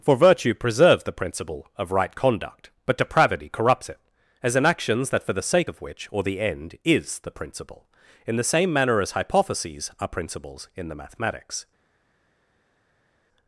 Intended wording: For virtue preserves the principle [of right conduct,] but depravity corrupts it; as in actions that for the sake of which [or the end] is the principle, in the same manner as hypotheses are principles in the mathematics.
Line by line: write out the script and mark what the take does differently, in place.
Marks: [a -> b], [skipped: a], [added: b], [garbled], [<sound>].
For virtue preserves the principle [of right conduct,] but depravity corrupts it; as in actions that for the sake of which [or the end] is the principle, in the same manner as hypotheses are principles in the mathematics.